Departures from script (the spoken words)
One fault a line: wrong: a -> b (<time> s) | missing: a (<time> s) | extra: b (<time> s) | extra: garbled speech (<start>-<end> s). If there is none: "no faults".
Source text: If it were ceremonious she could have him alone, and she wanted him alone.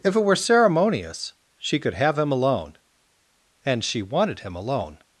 no faults